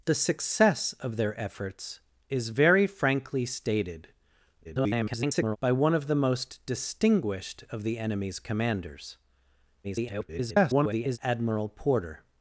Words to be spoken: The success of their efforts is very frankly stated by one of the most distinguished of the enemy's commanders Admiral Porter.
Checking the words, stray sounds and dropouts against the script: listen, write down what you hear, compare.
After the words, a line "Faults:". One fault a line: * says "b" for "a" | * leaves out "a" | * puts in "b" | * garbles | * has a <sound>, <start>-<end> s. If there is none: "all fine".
The success of their efforts is very frankly stated [garbled] by one of the most distinguished of the enemy's commanders [garbled] Admiral Porter.
Faults:
* garbles
* garbles